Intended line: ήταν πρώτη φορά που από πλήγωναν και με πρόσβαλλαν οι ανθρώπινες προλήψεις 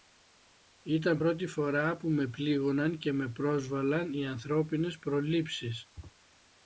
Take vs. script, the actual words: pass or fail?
fail